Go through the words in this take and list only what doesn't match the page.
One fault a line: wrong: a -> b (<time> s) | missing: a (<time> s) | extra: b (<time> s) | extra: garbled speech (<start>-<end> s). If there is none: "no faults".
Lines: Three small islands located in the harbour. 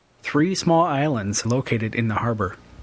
no faults